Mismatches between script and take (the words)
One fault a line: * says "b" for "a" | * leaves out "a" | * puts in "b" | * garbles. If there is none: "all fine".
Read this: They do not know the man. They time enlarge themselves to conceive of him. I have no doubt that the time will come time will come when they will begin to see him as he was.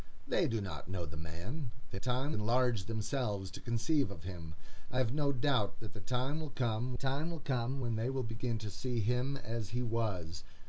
all fine